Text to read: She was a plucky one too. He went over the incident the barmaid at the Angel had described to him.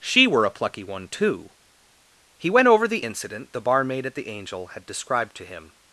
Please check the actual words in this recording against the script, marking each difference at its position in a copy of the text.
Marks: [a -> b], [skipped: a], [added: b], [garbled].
She [was -> were] a plucky one too. He went over the incident the barmaid at the Angel had described to him.